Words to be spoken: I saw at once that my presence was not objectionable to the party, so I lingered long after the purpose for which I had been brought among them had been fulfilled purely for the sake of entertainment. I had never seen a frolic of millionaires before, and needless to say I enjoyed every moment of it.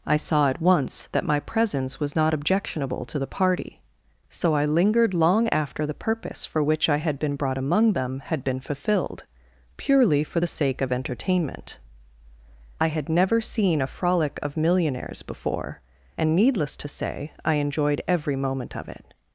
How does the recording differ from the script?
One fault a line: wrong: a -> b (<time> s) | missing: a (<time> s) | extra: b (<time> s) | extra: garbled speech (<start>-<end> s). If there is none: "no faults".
no faults